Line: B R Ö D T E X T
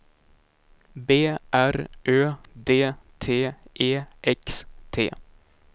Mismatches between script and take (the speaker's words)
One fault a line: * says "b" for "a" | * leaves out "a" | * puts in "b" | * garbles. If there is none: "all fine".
all fine